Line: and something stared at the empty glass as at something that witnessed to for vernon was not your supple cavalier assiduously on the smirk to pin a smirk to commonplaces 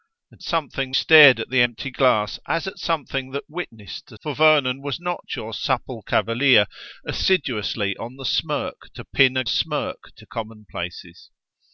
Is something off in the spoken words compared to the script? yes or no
no